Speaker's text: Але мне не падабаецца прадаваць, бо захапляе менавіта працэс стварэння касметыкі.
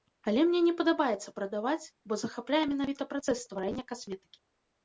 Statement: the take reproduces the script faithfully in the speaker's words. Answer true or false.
true